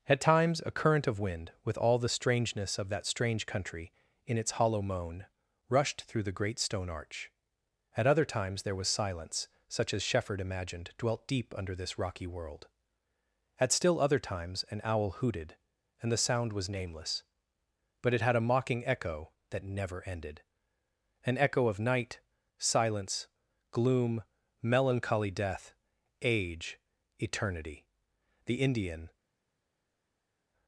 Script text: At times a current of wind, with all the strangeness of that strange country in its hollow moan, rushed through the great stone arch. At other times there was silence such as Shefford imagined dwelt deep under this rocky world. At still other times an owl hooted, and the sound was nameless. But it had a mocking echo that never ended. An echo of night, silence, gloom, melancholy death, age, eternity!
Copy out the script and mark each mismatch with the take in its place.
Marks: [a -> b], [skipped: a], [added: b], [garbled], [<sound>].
At times a current of wind, with all the strangeness of that strange country in its hollow moan, rushed through the great stone arch. At other times there was silence such as Shefford imagined dwelt deep under this rocky world. At still other times an owl hooted, and the sound was nameless. But it had a mocking echo that never ended. An echo of night, silence, gloom, melancholy death, age, eternity! [added: The Indian]